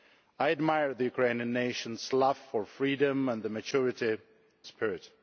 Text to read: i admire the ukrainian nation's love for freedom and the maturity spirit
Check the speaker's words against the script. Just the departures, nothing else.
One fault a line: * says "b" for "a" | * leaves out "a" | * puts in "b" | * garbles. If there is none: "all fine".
all fine